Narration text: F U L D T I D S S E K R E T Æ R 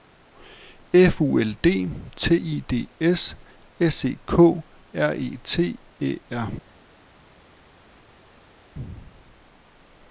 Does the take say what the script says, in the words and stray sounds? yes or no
yes